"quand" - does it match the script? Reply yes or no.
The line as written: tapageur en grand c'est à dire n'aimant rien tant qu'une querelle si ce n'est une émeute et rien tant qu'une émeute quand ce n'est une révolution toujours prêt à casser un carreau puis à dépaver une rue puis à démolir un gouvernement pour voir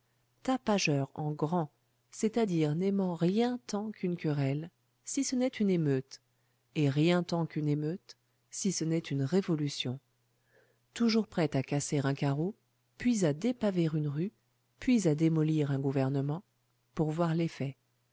no